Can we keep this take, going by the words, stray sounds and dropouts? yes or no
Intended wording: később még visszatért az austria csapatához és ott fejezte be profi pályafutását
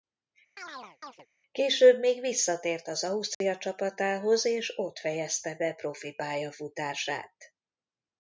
no